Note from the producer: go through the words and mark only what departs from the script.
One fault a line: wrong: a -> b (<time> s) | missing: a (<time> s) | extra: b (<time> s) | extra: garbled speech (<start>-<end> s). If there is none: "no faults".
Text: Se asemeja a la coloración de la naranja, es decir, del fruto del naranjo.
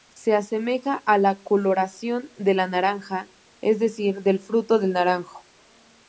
no faults